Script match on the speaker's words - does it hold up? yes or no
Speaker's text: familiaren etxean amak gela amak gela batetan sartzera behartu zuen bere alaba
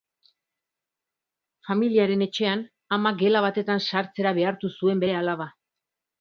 no